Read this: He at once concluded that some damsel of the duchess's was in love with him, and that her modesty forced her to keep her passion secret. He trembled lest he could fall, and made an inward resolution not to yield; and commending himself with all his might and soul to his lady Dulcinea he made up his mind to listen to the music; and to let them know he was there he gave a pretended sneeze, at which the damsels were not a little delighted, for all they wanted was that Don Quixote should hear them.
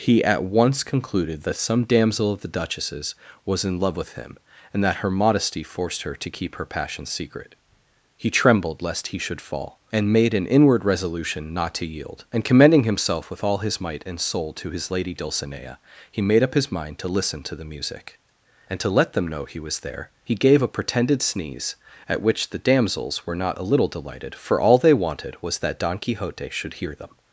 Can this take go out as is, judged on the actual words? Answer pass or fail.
fail